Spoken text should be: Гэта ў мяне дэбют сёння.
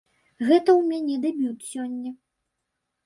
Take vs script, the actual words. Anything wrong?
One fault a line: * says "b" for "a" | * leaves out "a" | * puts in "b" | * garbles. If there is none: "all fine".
all fine